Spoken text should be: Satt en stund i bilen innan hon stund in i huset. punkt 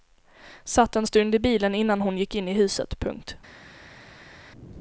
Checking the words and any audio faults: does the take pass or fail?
fail